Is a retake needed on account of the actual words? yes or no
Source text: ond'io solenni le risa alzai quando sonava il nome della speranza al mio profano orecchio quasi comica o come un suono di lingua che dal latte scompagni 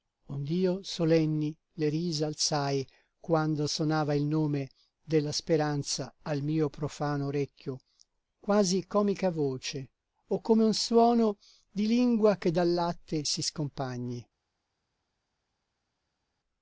yes